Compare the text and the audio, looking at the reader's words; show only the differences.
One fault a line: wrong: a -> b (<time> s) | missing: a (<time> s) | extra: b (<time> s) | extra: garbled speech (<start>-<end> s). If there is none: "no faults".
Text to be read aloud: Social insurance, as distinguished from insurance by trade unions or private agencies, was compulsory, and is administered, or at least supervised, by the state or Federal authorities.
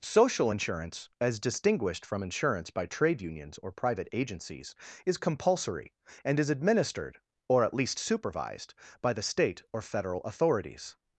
wrong: was -> is (5.1 s)